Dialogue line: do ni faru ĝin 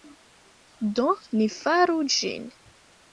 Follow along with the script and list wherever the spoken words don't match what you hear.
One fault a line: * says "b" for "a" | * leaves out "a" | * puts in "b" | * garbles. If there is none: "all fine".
all fine